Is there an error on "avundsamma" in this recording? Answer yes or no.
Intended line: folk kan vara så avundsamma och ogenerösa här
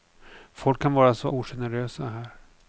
yes